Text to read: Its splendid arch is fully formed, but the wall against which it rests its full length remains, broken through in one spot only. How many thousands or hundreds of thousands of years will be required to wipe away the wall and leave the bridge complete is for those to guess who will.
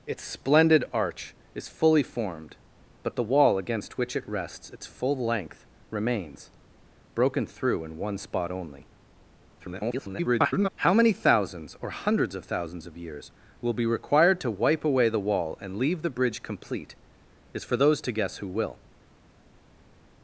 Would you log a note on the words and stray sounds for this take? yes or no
yes